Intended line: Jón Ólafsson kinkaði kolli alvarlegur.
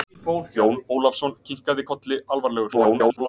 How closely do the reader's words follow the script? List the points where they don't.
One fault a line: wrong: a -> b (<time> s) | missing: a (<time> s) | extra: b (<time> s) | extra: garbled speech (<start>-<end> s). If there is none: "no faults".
extra: garbled speech (2.7-3.3 s)